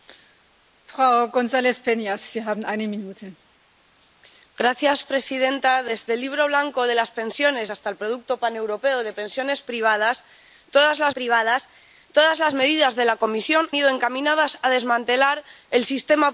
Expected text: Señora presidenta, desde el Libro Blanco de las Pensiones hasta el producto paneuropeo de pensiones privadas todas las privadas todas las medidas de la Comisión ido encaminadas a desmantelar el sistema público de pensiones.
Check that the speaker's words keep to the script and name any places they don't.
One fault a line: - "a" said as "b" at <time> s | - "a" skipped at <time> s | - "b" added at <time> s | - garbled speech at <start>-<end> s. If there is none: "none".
none